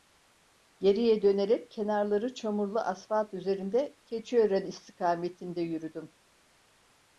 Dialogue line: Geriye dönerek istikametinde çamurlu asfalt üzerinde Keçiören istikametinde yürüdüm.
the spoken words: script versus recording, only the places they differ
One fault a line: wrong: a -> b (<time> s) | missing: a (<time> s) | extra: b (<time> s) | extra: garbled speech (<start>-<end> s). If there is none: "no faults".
wrong: istikametinde -> kenarları (1.7 s)